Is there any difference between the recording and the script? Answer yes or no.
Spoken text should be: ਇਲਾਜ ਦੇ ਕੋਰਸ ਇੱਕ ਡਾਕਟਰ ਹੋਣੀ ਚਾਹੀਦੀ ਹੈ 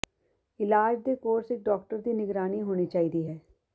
yes